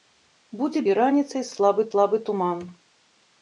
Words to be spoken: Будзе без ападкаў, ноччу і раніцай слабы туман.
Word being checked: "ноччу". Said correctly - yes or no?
no